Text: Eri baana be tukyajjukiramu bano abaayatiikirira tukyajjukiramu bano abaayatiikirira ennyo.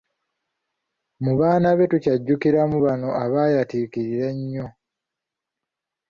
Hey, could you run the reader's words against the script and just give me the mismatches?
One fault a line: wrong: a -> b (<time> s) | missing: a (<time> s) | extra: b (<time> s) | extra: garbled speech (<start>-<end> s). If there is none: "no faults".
wrong: Eri -> Mu (1.2 s)
missing: tukyajjukiramu bano abaayatiikirira (4.3 s)